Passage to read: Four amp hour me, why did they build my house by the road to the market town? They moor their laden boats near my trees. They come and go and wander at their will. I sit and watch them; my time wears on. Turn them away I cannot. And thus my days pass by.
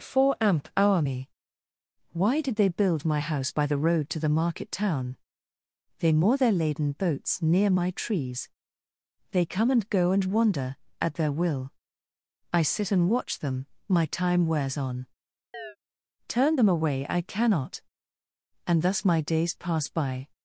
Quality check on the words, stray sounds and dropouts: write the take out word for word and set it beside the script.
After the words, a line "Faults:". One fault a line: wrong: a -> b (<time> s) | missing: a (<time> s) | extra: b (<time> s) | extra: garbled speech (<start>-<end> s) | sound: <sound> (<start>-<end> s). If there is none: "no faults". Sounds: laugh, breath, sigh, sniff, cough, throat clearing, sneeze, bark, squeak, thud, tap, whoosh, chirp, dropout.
Four amp hour me, why did they build my house by the road to the market town? They moor their laden boats near my trees. They come and go and wander at their will. I sit and watch them; my time wears on. Turn them away I cannot. And thus my days pass by.
Faults:
sound: chirp (15.5-15.8 s)